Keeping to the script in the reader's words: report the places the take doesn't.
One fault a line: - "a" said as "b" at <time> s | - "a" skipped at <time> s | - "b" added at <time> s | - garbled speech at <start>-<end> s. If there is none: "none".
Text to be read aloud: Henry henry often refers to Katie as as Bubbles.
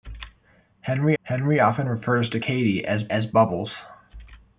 none